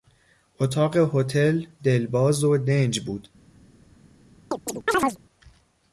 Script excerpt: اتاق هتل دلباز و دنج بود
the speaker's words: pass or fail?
pass